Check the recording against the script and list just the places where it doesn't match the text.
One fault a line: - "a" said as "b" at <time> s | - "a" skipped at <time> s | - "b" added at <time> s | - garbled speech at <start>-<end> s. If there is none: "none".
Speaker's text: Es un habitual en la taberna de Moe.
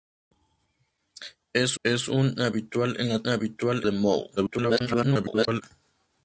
- "es" added at 1.8 s
- "taberna" said as "habitual" at 3.3 s
- garbled speech at 4.4-5.6 s